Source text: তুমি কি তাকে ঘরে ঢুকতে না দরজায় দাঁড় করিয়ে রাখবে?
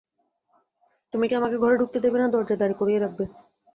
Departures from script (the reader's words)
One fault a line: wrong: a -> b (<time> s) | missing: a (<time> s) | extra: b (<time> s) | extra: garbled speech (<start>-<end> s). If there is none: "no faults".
wrong: তাকে -> আমাকে (1.3 s)
extra: দেবে (2.0 s)